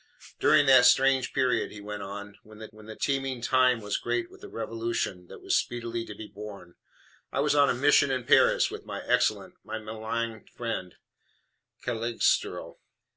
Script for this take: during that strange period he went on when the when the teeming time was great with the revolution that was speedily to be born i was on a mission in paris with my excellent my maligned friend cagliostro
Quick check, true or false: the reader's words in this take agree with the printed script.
true